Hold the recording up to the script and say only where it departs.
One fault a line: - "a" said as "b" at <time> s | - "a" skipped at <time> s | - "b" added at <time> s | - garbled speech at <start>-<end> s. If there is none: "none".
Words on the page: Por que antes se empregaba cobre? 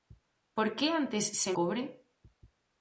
- "empregaba" skipped at 1.5 s